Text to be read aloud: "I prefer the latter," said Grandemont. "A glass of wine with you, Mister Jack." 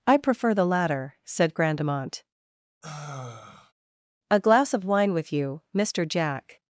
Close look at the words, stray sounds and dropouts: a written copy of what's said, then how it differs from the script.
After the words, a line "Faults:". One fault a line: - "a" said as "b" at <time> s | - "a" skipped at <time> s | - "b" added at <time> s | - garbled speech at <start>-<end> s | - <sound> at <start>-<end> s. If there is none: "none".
"I prefer the latter," said Grandemont. "A glass of wine with you, Mister Jack."
Faults:
- sigh at 2.8-3.7 s